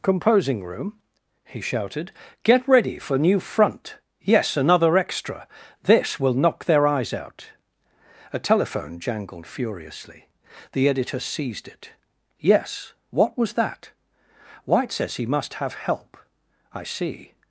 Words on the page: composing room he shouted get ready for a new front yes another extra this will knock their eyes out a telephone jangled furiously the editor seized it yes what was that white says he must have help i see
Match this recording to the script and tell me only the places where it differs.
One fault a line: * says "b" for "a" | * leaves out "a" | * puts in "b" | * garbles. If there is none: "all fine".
* leaves out "a"